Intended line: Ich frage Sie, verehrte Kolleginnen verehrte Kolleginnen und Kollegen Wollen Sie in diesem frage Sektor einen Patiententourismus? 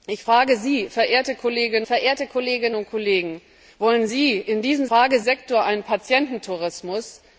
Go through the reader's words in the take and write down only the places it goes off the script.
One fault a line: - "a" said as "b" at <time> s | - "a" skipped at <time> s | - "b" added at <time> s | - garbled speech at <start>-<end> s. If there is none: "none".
none